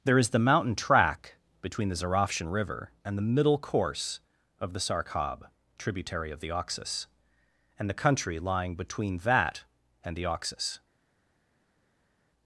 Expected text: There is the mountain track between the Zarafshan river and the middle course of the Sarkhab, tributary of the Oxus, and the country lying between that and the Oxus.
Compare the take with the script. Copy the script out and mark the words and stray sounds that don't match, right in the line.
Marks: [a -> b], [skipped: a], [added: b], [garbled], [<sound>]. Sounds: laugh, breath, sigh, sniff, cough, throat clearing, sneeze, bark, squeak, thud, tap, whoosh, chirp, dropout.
There is the mountain track between the Zarafshan river and the middle course of the Sarkhab, tributary of the Oxus, and the country lying between that and the Oxus.